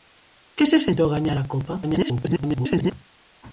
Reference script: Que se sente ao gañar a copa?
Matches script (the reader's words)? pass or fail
fail